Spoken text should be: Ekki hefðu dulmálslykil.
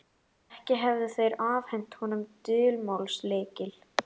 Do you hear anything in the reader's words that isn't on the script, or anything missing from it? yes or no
yes